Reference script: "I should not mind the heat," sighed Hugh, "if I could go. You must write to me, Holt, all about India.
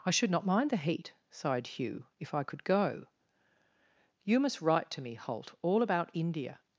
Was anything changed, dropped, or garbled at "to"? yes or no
no